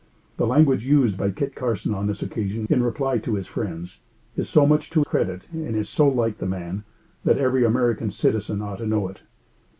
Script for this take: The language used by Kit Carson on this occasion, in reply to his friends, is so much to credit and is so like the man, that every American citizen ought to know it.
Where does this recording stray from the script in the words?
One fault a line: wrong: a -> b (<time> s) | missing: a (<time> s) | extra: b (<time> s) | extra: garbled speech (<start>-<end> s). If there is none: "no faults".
no faults